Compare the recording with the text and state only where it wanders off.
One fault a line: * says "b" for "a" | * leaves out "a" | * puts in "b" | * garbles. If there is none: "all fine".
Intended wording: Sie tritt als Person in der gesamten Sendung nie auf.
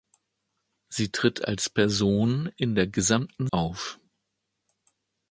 * leaves out "Sendung nie"